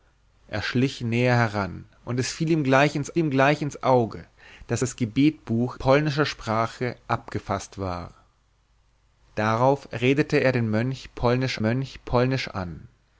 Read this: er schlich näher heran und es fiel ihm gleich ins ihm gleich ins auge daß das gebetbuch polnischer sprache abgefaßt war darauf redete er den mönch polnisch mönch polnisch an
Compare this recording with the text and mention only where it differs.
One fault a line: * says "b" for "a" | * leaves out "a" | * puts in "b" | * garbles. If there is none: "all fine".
all fine